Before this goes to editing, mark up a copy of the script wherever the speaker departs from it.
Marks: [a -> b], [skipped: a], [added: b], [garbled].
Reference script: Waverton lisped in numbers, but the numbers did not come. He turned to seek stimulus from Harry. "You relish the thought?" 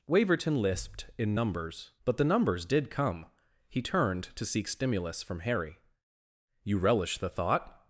Waverton lisped in numbers, but the numbers did [skipped: not] come. He turned to seek stimulus from Harry. "You relish the thought?"